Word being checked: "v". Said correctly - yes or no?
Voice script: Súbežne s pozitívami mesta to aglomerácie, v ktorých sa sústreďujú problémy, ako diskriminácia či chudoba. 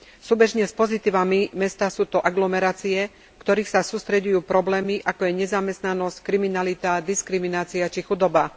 yes